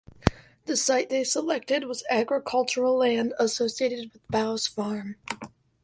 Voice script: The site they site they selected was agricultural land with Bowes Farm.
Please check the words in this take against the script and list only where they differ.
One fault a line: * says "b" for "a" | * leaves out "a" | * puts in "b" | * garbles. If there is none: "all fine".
* leaves out "site they"
* puts in "associated"